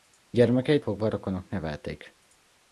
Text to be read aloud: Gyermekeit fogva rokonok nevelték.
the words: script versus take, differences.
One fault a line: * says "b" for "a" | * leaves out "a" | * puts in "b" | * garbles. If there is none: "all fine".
all fine